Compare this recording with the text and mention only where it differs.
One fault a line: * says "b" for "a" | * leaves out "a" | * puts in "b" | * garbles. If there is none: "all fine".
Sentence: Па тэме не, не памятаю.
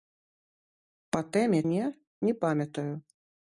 all fine